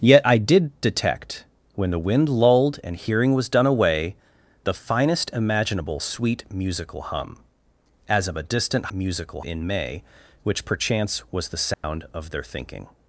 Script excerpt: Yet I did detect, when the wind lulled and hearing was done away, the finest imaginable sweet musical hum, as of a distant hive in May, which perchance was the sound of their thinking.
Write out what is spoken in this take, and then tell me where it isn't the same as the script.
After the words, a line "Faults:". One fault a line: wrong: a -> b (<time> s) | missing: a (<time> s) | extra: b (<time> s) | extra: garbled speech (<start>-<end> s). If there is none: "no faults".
Yet I did detect, when the wind lulled and hearing was done away, the finest imaginable sweet musical hum, as of a distant musical in May, which perchance was the sound of their thinking.
Faults:
wrong: hive -> musical (8.9 s)